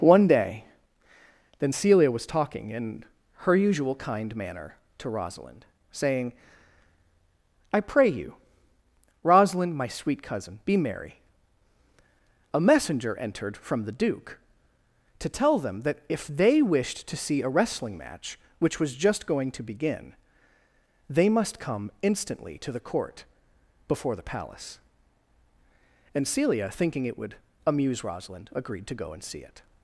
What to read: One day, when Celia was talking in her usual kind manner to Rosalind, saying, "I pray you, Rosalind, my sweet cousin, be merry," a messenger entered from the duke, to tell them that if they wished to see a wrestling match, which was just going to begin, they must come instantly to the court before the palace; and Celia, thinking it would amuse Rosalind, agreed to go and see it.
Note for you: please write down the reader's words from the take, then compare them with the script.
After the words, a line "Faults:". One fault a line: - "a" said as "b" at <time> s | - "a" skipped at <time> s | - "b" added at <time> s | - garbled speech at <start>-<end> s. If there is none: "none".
One day, then Celia was talking in her usual kind manner to Rosalind, saying, "I pray you, Rosalind, my sweet cousin, be merry," a messenger entered from the duke, to tell them that if they wished to see a wrestling match, which was just going to begin, they must come instantly to the court before the palace; and Celia, thinking it would amuse Rosalind, agreed to go and see it.
Faults:
- "when" said as "then" at 1.6 s